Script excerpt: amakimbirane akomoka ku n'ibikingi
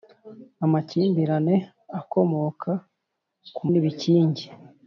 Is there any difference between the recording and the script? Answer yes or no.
no